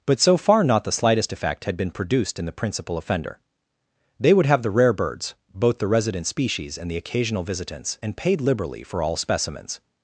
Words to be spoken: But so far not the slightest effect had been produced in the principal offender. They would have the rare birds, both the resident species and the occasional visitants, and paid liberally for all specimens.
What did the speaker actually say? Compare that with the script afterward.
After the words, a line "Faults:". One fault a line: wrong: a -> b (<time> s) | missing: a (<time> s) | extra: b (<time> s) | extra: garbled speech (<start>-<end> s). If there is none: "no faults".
But so far not the slightest effect had been produced in the principal offender. They would have the rare birds, both the resident species and the occasional visitants, and paid liberally for all specimens.
Faults:
no faults